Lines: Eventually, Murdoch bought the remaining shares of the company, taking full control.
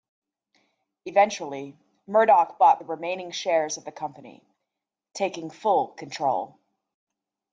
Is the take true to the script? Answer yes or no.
yes